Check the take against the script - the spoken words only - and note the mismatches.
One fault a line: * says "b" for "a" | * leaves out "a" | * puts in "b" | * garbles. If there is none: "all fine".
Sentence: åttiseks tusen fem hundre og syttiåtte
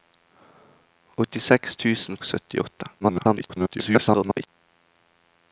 * leaves out "fem hundre"
* garbles